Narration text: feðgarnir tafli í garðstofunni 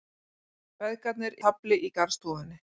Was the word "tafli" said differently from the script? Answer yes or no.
no